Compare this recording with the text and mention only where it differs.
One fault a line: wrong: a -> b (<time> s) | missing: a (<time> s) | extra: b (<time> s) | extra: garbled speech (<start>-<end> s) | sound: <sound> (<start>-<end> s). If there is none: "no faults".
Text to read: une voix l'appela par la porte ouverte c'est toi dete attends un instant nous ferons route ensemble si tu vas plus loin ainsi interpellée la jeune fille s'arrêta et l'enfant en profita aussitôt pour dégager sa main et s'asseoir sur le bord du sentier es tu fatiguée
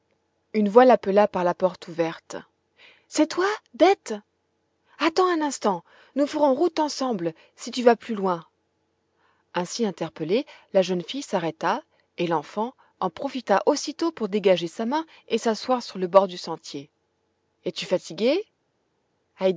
no faults